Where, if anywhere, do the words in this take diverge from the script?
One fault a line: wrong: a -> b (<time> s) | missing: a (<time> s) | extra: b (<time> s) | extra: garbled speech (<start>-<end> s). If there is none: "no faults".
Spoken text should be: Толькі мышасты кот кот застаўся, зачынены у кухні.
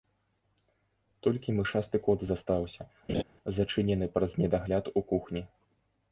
missing: кот (2.2 s)
extra: праз недагляд (4.2 s)